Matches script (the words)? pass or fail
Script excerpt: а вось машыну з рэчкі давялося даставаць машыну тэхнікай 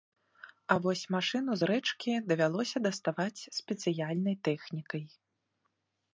fail